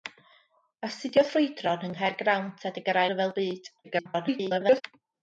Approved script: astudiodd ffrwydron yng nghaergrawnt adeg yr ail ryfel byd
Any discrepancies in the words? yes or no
yes